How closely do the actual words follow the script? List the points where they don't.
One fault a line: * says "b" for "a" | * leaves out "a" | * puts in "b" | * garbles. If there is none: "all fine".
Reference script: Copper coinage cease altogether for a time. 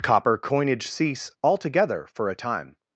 all fine